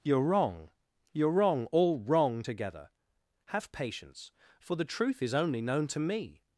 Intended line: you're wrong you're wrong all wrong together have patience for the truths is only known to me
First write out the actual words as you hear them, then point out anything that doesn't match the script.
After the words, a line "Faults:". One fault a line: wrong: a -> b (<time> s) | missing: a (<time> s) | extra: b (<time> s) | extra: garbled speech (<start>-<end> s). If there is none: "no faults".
you're wrong you're wrong all wrong together have patience for the truth is only known to me
Faults:
wrong: truths -> truth (4.8 s)